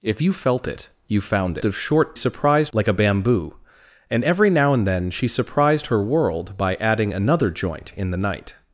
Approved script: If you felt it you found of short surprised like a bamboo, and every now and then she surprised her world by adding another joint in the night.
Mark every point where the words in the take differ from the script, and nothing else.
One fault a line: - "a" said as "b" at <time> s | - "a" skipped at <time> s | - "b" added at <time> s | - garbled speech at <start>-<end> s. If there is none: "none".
none